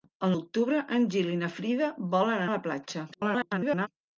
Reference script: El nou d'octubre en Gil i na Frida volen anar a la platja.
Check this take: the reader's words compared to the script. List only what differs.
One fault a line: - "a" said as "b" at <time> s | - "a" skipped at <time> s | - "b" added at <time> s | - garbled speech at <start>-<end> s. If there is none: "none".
- "nou" skipped at 0.3 s
- "anar" skipped at 2.4 s
- garbled speech at 3.1-3.9 s